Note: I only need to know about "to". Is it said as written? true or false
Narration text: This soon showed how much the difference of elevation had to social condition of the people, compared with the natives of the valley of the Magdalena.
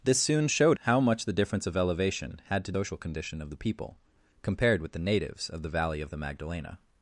true